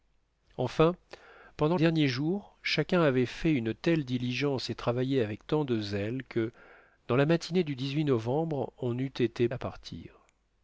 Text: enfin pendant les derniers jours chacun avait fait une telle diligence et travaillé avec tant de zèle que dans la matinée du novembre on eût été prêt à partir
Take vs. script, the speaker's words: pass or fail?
fail